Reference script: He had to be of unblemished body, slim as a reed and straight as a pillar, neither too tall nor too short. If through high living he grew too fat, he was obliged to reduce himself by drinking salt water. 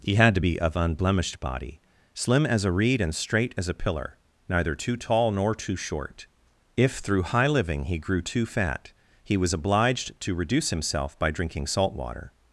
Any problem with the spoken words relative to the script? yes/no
no